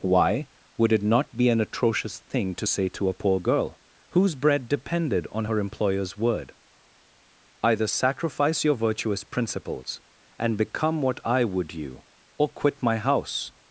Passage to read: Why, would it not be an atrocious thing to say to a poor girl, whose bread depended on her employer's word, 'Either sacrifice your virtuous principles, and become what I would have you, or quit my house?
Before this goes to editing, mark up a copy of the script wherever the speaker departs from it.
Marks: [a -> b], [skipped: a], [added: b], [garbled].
Why, would it not be an atrocious thing to say to a poor girl, whose bread depended on her employer's word, 'Either sacrifice your virtuous principles, and become what I would [skipped: have] you, or quit my house?